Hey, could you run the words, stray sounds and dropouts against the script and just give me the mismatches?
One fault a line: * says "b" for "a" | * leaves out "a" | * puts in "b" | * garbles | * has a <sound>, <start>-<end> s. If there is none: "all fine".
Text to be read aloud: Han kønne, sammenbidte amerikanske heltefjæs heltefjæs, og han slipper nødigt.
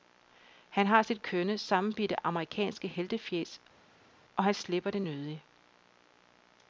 * puts in "har sit"
* leaves out "heltefjæs"
* puts in "det"